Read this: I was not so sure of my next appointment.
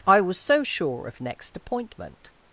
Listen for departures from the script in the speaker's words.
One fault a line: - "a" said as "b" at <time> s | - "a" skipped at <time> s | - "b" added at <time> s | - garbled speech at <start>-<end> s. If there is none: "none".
- "not" skipped at 0.4 s
- "my" skipped at 1.2 s